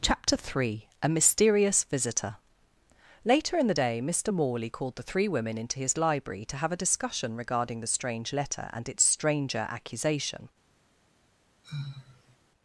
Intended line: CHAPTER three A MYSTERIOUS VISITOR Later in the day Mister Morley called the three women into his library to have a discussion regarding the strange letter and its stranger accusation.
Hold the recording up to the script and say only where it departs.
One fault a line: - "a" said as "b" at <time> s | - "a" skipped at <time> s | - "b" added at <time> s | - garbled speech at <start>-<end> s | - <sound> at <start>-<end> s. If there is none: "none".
- sigh at 11.6-12.4 s